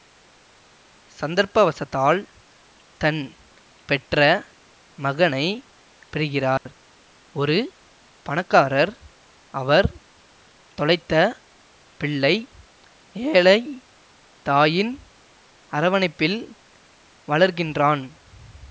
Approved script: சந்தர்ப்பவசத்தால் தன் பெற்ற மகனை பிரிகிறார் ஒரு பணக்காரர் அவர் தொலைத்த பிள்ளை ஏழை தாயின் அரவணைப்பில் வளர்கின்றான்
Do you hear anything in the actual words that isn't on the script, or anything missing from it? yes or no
no